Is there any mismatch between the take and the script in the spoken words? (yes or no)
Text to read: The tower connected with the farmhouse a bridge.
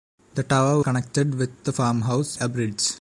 no